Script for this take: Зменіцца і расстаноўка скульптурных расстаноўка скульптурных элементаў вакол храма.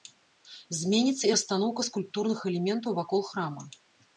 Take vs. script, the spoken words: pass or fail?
fail